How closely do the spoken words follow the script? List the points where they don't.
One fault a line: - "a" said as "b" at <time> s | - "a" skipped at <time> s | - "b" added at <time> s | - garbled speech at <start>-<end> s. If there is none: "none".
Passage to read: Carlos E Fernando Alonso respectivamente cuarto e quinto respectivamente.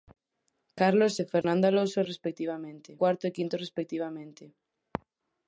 none